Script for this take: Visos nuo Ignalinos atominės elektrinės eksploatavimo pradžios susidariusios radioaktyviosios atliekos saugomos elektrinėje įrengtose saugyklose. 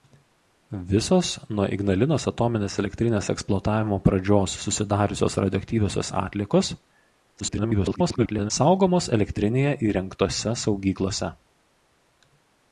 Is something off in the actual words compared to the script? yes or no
yes